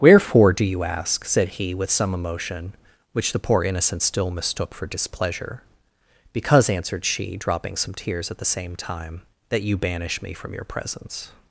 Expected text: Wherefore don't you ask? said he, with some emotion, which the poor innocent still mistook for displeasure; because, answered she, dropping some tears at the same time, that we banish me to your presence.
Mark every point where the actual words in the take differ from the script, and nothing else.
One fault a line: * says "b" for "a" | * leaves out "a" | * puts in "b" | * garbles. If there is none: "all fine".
* says "do" for "don't"
* says "you" for "we"
* says "from" for "to"